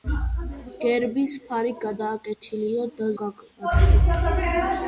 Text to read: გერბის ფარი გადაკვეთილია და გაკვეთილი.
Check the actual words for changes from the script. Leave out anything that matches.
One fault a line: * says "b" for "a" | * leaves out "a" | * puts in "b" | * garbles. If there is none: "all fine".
all fine